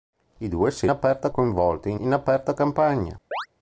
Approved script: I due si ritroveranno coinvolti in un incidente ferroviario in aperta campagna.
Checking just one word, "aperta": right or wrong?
right